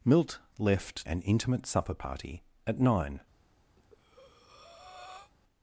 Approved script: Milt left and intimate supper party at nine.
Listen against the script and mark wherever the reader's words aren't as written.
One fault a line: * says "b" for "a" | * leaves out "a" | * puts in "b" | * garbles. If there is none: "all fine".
all fine